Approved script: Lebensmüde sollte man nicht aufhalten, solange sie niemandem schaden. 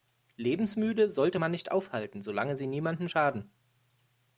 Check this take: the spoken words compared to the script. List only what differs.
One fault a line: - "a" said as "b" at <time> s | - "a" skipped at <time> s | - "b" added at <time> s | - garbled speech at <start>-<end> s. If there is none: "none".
none